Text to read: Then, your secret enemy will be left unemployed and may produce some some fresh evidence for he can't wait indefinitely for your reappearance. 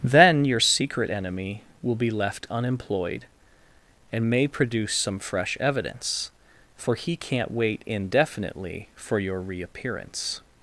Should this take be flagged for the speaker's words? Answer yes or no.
yes